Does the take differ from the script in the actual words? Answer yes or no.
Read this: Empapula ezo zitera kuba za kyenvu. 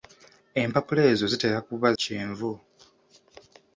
yes